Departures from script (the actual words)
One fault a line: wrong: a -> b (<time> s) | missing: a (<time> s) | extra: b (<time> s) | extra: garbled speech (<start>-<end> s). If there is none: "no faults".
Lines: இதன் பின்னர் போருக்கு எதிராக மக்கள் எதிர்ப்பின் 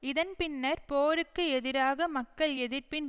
no faults